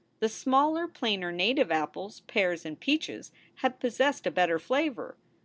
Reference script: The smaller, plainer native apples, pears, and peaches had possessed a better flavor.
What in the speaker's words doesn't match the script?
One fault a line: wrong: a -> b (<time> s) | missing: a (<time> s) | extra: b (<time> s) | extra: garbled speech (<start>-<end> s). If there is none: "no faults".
no faults